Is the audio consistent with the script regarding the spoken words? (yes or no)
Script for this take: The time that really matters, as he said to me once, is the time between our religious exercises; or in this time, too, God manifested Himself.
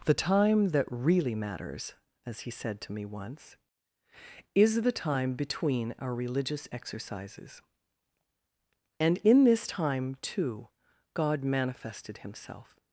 no